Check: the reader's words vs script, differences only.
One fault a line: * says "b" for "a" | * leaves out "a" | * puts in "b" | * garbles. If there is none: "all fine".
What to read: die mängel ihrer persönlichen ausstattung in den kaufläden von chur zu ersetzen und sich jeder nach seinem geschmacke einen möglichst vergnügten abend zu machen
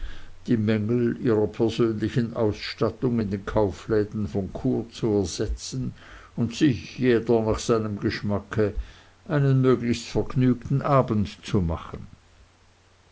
all fine